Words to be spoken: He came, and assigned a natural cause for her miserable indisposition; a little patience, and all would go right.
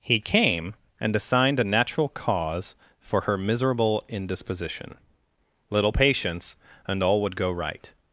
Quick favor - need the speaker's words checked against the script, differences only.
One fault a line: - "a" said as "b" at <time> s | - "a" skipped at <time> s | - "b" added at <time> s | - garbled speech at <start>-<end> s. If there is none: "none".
- "a" skipped at 5.0 s